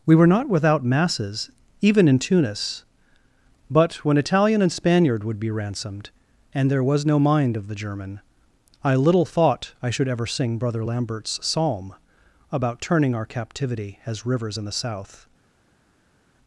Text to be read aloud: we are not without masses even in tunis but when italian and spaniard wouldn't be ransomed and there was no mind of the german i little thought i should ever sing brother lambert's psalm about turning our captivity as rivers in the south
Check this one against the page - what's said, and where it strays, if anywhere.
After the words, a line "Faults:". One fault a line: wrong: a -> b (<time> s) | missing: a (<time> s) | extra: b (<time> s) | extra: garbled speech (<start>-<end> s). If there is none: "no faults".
we were not without masses even in tunis but when italian and spaniard would be ransomed and there was no mind of the german i little thought i should ever sing brother lambert's psalm about turning our captivity as rivers in the south
Faults:
wrong: are -> were (0.1 s)
wrong: wouldn't -> would (5.2 s)